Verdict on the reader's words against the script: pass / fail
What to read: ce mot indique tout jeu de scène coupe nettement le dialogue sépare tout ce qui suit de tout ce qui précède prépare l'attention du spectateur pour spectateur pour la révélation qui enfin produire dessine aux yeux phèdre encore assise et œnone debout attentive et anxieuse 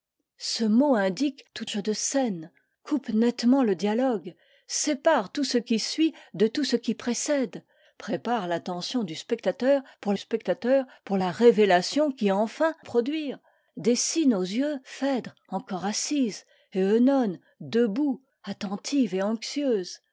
pass